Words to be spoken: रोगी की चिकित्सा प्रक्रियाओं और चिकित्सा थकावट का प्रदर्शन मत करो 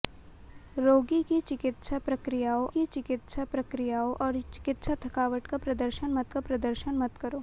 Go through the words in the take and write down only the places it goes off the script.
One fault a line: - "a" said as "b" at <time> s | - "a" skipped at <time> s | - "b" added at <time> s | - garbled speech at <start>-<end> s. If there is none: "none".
- "की चिकित्सा प्रक्रियाओं" added at 2.7 s
- "का प्रदर्शन मत" added at 6.3 s